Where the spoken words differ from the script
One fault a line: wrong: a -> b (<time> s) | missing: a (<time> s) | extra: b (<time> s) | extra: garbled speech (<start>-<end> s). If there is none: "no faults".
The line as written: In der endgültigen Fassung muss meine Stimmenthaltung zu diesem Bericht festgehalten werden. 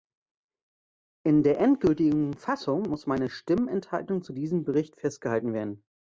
no faults